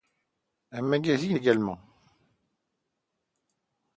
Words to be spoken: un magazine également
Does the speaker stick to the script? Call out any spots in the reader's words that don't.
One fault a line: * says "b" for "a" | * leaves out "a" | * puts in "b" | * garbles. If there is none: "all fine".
all fine